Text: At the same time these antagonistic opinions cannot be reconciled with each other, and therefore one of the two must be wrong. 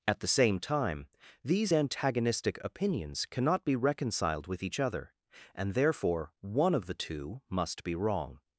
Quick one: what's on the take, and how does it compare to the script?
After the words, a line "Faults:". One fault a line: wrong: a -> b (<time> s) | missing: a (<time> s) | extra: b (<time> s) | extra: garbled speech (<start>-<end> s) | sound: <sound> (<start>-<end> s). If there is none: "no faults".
At the same time these antagonistic opinions cannot be reconciled with each other, and therefore one of the two must be wrong.
Faults:
no faults